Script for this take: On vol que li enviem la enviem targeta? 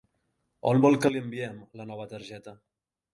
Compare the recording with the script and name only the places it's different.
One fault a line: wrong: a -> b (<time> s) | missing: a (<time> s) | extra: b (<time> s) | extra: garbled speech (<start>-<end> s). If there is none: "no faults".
wrong: enviem -> nova (1.9 s)